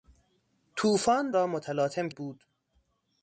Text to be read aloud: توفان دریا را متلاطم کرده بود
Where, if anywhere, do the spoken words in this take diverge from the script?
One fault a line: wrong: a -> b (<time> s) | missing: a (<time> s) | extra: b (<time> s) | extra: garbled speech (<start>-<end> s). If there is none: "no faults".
missing: دریا (1.3 s)
missing: کرده (2.1 s)